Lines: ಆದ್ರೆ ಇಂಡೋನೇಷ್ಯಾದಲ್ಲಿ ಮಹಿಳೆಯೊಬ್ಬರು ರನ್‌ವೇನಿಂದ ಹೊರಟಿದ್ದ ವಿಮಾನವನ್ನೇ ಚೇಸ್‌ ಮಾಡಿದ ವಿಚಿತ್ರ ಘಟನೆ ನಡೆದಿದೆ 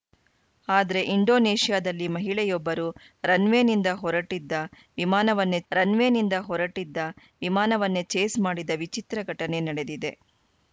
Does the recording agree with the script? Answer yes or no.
no